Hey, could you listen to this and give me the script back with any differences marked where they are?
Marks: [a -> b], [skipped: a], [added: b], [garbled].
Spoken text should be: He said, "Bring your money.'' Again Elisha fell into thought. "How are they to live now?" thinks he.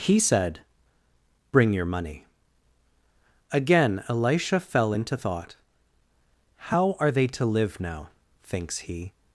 He said, "Bring your money.'' Again Elisha fell into thought. "How are they to live now?" thinks he.